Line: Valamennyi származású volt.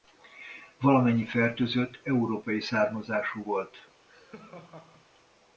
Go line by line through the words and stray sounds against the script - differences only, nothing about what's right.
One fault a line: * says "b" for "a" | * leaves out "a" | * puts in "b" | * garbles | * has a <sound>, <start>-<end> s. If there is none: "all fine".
* puts in "fertőzött európai"
* has a laugh, 4.1-5.1 s